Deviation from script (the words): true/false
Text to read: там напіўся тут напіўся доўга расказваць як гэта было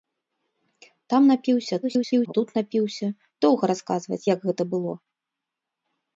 true